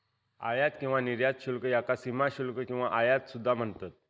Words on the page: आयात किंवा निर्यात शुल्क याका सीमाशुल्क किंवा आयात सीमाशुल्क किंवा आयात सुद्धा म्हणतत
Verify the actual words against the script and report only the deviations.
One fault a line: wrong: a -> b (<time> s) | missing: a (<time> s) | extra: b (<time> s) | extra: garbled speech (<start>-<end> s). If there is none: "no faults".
missing: सीमाशुल्क किंवा आयात (3.3 s)